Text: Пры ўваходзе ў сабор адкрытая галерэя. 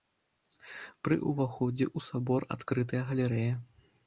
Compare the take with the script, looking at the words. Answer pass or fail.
pass